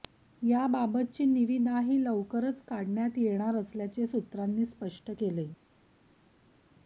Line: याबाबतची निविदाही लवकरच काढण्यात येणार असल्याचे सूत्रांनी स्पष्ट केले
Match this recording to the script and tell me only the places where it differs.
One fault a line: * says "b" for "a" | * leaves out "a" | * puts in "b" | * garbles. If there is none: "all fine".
all fine